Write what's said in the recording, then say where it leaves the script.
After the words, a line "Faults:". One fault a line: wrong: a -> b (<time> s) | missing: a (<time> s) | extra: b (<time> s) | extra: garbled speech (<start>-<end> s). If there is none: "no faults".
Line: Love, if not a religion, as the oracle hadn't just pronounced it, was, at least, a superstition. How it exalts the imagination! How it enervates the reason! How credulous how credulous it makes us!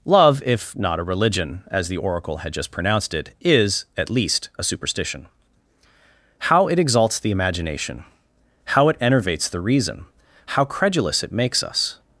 Love, if not a religion, as the oracle had just pronounced it, is, at least, a superstition. How it exalts the imagination! How it enervates the reason! How credulous it makes us!
Faults:
wrong: hadn't -> had (2.4 s)
wrong: was -> is (3.4 s)
missing: how credulous (11.2 s)